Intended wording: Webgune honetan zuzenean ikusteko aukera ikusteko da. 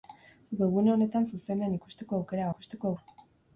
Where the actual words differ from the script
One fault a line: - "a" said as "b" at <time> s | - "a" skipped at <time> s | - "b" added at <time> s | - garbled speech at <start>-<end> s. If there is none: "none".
none